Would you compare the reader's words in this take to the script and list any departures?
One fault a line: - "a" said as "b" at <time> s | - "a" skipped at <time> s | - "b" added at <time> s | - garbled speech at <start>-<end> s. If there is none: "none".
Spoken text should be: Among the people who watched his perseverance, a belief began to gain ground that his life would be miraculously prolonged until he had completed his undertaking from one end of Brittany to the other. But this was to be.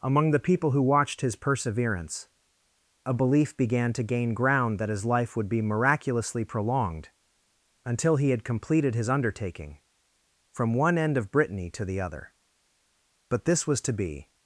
none